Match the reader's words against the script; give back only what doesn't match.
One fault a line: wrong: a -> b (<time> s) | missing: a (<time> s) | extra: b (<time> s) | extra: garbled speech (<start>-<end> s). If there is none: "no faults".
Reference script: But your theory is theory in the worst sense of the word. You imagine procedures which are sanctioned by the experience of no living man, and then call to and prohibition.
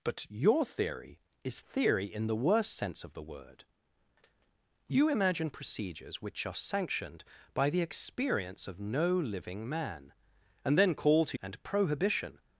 no faults